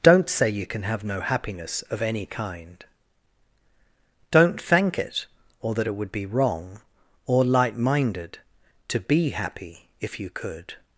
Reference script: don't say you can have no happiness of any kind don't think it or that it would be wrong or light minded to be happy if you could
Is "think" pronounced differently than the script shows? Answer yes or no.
yes